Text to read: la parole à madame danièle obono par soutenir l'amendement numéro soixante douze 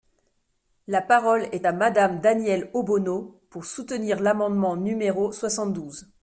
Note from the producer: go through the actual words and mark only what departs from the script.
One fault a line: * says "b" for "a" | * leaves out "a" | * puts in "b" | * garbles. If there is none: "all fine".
* puts in "est"
* says "pour" for "par"